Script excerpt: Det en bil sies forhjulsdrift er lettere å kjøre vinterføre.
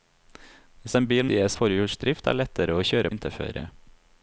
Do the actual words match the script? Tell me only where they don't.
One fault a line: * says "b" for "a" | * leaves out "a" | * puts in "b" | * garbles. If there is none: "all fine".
all fine